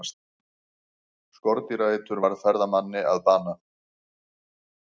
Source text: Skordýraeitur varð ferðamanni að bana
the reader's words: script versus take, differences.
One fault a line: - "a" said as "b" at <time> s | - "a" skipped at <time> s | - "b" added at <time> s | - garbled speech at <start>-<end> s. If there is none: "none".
none